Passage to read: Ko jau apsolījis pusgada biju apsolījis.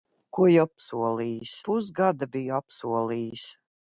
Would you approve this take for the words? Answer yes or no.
yes